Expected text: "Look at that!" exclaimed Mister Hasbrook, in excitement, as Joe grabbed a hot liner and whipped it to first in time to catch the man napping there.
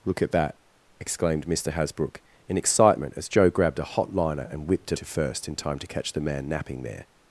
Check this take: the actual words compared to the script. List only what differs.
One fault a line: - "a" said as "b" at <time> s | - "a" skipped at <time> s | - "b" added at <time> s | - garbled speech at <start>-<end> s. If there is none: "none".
none